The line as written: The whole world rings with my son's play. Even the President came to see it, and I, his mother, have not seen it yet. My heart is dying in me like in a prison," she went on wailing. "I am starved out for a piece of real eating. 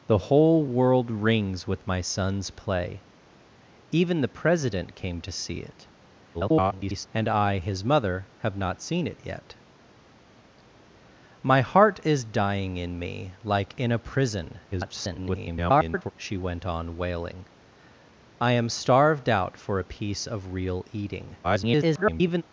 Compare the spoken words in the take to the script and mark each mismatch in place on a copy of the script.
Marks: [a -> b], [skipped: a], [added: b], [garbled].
The whole world rings with my son's play. Even the President came to see it, [garbled] and I, his mother, have not seen it yet. My heart is dying in me like in a prison," [garbled] she went on wailing. "I am starved out for a piece of real eating. [garbled]